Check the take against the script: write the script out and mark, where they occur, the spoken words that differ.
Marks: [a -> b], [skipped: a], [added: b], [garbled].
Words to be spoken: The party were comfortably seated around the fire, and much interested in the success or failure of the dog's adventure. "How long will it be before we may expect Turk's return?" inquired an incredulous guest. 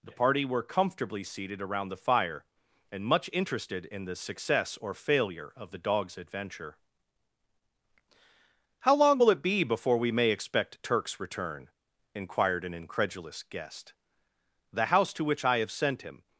The party were comfortably seated around the fire, and much interested in the success or failure of the dog's adventure. "How long will it be before we may expect Turk's return?" inquired an incredulous guest. [added: The house to which I have sent him]